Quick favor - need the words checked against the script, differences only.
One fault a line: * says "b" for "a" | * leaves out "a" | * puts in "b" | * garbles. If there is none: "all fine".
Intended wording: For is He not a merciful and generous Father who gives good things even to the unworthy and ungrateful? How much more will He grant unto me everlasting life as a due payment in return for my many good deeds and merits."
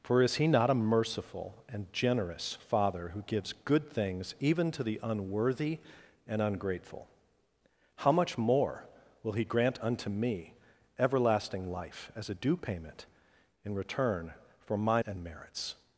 * leaves out "many good deeds"